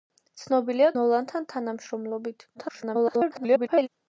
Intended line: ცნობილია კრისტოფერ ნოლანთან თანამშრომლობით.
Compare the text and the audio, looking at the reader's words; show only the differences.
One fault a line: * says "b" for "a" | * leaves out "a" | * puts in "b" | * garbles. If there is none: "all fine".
* leaves out "კრისტოფერ"
* garbles